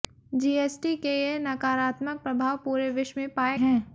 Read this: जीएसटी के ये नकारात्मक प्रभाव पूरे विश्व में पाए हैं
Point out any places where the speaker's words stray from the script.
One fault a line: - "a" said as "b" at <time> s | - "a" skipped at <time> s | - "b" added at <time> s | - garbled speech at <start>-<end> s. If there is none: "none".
none